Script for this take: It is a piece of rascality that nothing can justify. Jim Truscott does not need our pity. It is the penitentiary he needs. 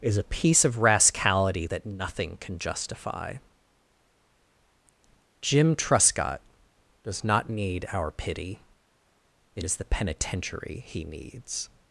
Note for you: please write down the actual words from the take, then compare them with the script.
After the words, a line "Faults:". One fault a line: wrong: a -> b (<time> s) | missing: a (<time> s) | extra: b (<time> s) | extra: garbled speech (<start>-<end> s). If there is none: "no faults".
is a piece of rascality that nothing can justify. Jim Truscott does not need our pity. It is the penitentiary he needs.
Faults:
missing: It (0.0 s)